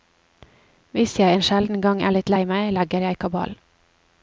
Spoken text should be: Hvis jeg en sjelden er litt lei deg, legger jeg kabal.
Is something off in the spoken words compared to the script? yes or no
yes